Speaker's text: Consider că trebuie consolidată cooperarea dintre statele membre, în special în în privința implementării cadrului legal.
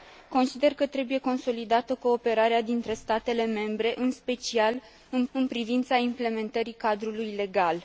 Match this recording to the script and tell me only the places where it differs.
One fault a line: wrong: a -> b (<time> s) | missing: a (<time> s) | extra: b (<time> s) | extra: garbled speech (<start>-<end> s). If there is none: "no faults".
no faults